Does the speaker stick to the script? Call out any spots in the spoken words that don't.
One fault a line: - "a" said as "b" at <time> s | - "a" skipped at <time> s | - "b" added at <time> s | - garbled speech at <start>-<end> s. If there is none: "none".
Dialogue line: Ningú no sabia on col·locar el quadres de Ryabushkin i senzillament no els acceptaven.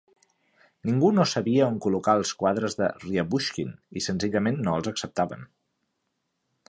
- "el" said as "els" at 2.2 s